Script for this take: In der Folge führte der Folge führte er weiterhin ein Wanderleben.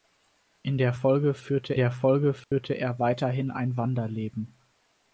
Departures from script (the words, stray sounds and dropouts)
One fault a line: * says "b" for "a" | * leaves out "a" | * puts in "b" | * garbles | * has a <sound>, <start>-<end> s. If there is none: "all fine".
* has a dropout, 2.4-2.5 s